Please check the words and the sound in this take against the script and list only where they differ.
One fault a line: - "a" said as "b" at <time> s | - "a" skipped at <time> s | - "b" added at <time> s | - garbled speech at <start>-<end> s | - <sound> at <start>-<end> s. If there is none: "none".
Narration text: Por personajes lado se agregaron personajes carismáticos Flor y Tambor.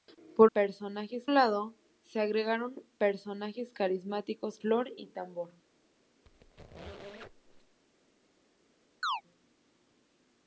- squeak at 6.2-7.8 s
- chirp at 9.0-9.2 s